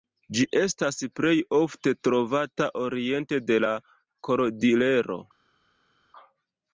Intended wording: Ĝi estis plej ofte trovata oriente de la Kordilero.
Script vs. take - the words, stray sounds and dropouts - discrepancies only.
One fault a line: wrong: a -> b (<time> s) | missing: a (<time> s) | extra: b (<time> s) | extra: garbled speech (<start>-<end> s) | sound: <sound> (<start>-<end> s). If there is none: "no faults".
wrong: estis -> estas (0.6 s)